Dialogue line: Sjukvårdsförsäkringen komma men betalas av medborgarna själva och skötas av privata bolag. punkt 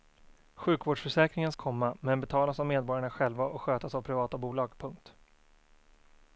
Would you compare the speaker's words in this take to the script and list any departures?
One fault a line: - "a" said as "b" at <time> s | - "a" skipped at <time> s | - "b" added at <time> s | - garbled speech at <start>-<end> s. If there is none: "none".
none